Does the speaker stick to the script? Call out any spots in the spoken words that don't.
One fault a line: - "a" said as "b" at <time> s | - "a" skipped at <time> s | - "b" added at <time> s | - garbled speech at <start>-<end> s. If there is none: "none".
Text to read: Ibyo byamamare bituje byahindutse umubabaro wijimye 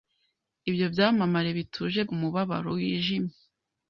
- "byahindutse" skipped at 2.0 s